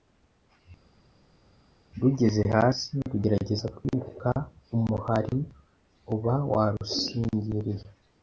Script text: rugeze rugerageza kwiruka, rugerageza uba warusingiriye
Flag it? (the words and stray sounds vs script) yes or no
yes